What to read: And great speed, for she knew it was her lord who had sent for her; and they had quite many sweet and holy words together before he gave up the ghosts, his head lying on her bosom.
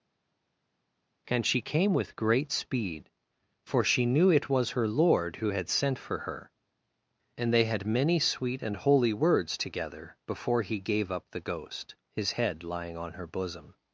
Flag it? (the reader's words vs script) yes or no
yes